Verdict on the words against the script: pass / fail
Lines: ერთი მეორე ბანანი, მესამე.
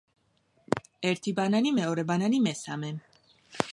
fail